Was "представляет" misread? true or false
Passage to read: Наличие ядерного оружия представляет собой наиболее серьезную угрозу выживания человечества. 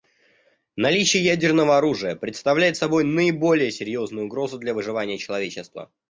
false